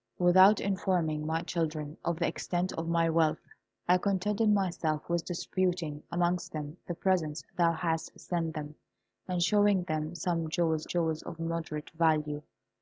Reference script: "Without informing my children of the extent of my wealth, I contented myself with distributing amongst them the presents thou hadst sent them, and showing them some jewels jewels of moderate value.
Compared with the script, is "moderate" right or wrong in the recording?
right